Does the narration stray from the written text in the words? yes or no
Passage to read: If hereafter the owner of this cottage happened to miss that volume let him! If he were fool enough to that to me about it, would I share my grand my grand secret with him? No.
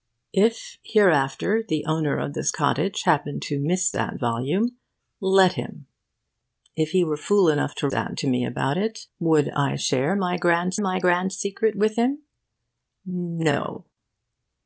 no